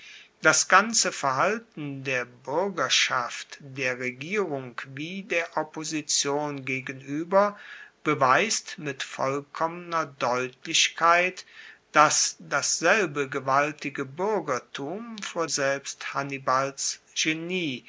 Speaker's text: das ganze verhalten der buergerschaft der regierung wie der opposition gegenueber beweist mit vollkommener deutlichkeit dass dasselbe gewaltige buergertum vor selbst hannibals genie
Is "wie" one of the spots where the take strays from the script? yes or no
no